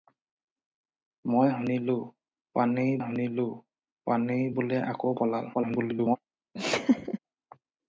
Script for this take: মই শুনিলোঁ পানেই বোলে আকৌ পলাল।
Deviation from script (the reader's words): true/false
true